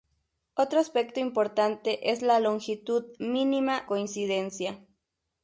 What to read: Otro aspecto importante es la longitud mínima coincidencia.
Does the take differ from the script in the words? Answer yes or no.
no